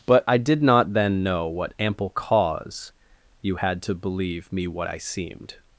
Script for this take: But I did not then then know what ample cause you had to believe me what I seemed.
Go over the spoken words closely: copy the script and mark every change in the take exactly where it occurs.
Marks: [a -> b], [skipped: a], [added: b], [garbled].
But I did not then [skipped: then] know what ample cause you had to believe me what I seemed.